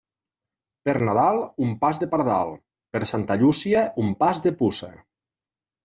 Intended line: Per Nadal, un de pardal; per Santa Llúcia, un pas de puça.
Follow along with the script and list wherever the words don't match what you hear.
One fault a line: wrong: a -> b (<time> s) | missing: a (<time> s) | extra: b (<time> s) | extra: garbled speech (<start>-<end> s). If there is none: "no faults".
extra: pas (1.9 s)